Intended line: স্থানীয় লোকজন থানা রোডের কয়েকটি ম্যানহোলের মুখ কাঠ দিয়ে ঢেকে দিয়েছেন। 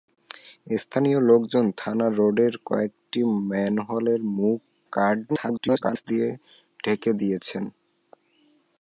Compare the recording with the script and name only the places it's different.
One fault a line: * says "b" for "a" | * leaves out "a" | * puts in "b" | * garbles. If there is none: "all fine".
* garbles